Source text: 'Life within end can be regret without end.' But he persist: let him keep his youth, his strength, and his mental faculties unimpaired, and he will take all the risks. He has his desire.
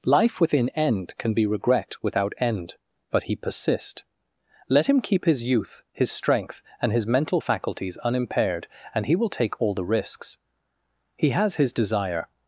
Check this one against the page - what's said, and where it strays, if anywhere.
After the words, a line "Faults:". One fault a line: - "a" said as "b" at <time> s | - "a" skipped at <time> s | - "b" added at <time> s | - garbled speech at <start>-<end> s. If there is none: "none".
'Life within end can be regret without end.' But he persist: let him keep his youth, his strength, and his mental faculties unimpaired, and he will take all the risks. He has his desire.
Faults:
none